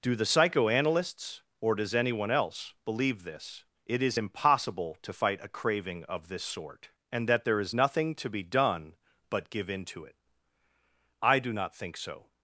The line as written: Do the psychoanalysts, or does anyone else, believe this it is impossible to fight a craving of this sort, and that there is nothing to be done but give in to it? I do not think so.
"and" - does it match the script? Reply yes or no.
yes